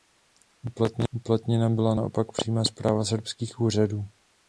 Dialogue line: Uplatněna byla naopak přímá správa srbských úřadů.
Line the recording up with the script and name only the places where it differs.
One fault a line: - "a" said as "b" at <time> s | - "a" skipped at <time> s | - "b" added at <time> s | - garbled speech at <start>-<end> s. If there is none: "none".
none